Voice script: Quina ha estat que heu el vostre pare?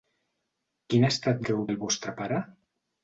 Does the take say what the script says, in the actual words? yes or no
yes